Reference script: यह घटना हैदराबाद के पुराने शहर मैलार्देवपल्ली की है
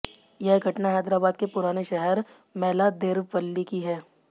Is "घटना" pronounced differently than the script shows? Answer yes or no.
no